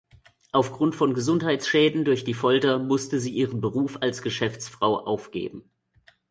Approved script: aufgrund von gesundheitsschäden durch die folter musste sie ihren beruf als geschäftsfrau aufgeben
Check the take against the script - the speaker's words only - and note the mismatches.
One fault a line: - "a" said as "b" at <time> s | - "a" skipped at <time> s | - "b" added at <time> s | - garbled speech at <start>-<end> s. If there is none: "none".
none